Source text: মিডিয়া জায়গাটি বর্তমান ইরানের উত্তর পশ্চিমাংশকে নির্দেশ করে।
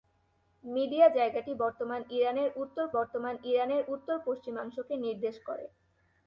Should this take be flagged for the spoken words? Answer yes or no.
yes